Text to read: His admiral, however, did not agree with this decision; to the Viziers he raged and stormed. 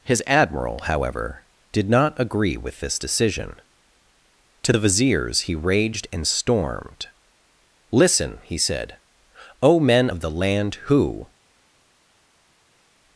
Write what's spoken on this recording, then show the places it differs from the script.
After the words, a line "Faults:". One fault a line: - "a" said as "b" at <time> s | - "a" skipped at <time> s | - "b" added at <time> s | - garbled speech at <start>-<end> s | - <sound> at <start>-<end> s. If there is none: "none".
His admiral, however, did not agree with this decision; to the Viziers he raged and stormed. "Listen," he said, "O men of the land who
Faults:
- "Listen he said O men of the land who" added at 7.9 s